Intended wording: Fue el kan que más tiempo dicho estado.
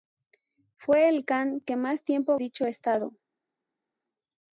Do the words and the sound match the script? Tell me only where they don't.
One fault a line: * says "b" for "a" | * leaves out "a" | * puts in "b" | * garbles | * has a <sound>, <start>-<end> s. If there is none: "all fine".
all fine